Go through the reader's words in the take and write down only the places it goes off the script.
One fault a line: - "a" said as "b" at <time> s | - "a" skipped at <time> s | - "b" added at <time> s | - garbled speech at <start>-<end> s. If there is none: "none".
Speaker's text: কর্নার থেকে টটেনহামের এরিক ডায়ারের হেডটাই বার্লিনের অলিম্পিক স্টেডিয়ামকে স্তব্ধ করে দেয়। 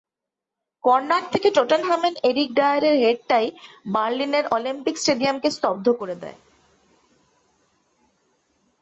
none